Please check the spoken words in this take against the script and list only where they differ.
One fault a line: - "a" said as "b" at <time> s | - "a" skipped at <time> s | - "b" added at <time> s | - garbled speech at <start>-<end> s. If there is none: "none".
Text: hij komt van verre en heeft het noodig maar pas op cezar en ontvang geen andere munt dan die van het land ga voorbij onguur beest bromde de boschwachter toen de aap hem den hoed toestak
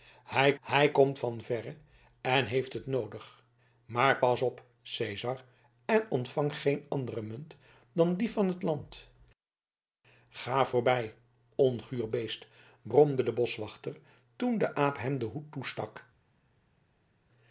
- "hij" added at 0.6 s